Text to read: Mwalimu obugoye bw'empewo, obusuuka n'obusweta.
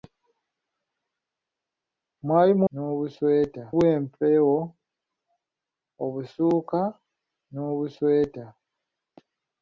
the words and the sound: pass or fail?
fail